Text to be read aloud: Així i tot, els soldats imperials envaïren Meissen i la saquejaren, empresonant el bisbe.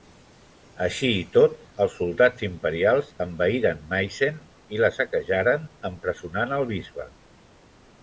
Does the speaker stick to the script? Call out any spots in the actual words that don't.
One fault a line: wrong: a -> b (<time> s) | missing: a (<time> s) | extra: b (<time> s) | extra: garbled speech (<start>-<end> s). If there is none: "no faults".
no faults